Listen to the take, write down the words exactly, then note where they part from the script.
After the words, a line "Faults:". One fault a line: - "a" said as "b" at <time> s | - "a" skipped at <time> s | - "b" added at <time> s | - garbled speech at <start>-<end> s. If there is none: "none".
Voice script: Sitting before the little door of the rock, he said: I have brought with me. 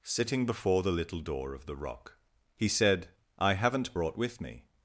Sitting before the little door of the rock, he said: I haven't brought with me.
Faults:
- "have" said as "haven't" at 3.5 s